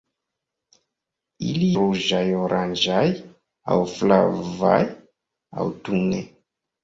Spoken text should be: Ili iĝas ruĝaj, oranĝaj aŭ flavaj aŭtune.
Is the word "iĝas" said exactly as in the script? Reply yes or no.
no